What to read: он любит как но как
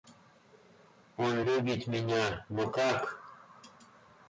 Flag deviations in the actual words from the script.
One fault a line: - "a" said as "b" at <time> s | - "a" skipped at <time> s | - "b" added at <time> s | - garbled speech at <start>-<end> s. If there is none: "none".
- "как" said as "меня" at 1.9 s